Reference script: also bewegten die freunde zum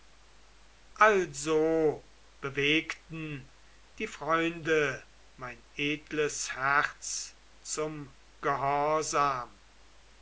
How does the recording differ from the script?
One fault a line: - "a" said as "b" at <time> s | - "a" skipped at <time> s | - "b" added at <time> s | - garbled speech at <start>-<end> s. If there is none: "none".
- "mein edles herz" added at 5.3 s